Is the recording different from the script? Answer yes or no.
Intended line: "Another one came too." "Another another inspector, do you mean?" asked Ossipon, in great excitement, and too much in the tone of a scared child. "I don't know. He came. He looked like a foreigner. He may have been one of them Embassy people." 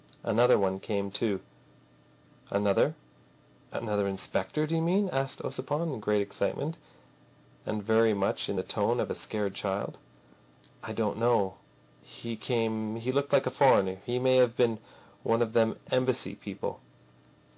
yes